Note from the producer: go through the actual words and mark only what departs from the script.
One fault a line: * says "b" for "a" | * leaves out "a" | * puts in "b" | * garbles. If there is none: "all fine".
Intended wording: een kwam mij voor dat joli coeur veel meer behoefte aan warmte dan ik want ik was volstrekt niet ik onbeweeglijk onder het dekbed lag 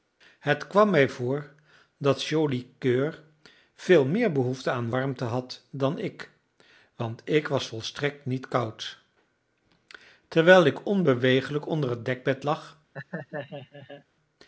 * says "het" for "een"
* puts in "had"
* puts in "koud terwijl"